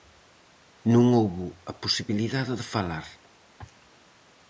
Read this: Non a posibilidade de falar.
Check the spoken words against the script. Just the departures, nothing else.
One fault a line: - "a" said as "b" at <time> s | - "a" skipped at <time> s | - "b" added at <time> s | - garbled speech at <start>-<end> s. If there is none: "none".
- "houbo" added at 1.2 s